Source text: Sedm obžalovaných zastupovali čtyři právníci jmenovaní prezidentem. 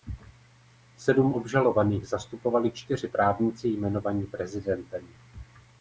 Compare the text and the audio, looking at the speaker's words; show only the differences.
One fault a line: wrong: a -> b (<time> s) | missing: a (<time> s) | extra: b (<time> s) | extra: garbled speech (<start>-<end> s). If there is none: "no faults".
no faults